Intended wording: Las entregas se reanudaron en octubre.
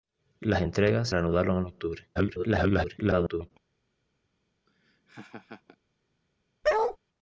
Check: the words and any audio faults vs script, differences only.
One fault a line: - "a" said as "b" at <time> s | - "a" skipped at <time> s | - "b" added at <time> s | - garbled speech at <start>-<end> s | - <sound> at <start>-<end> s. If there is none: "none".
- "se" skipped at 1.1 s
- garbled speech at 2.2-3.5 s
- laugh at 4.7-5.8 s
- bark at 6.6-7.0 s